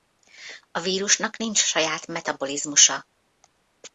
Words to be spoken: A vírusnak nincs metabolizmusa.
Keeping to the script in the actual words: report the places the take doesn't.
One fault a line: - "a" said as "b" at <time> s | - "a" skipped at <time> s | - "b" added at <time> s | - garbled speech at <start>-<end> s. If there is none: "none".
- "saját" added at 1.6 s